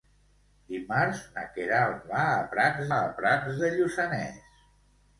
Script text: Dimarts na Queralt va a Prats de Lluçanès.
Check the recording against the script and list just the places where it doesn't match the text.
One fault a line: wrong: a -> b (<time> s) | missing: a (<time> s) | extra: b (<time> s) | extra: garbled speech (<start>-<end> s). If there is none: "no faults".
extra: a Prats (2.9 s)